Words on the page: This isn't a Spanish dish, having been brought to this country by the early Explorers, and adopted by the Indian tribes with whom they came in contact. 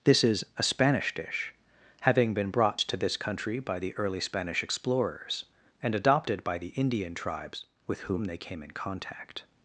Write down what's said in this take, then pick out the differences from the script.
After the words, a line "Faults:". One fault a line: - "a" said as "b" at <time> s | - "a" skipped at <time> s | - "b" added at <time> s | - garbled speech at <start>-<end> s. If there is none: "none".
This is a Spanish dish, having been brought to this country by the early Spanish explorers, and adopted by the Indian tribes with whom they came in contact.
Faults:
- "isn't" said as "is" at 0.2 s
- "Spanish" added at 4.2 s